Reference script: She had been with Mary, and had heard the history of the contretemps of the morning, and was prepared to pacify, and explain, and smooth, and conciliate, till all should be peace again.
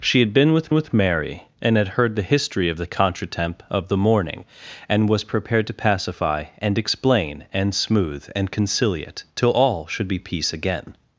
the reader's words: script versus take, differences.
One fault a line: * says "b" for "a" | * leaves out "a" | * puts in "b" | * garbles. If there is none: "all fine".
* puts in "with"